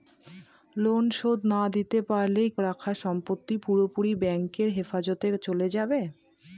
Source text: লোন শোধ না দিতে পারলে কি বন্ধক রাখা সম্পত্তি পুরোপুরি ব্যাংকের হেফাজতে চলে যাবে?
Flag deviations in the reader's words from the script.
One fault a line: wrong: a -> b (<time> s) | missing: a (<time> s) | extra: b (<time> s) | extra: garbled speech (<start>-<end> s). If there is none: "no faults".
missing: কি বন্ধক (2.4 s)